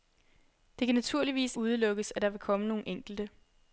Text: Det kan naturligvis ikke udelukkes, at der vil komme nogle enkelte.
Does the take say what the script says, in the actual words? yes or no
no